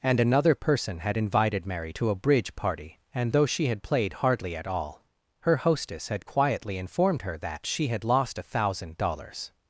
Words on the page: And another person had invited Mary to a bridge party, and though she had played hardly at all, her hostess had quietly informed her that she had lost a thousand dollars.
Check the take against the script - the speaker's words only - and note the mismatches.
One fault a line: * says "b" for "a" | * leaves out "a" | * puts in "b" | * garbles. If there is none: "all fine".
all fine